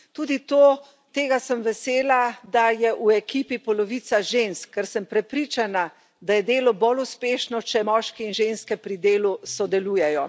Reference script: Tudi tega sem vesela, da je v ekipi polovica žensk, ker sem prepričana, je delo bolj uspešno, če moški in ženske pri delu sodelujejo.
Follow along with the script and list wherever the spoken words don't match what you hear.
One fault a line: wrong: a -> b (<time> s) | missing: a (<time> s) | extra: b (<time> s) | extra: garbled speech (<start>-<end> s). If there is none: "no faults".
extra: da (6.2 s)